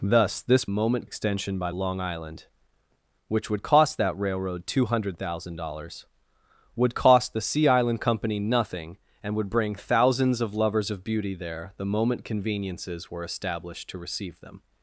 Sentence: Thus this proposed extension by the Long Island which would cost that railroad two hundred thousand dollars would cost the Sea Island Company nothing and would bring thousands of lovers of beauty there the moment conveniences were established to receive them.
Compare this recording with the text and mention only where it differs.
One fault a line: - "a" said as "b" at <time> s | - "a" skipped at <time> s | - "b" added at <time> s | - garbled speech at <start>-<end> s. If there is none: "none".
- "proposed" said as "moment" at 0.7 s
- "the" skipped at 1.7 s